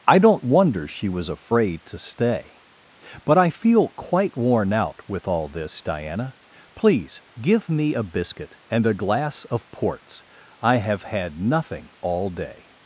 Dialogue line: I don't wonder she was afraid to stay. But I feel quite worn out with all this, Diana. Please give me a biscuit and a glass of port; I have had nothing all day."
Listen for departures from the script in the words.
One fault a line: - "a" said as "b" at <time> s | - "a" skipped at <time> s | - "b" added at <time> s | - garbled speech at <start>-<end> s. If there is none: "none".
- "port" said as "ports" at 9.7 s